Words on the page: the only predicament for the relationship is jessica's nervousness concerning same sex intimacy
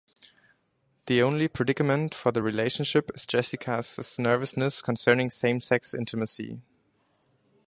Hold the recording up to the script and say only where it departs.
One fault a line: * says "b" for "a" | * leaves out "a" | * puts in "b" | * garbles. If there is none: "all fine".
all fine